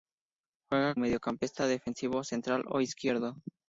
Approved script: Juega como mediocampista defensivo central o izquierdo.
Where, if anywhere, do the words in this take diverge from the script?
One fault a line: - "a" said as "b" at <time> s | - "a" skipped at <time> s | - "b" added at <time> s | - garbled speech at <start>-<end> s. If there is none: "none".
- "como" skipped at 0.9 s